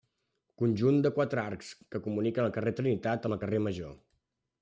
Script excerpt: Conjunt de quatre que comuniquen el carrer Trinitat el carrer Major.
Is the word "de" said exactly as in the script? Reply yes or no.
yes